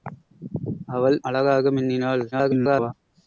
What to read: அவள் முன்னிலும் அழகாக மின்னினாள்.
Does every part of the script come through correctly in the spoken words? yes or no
no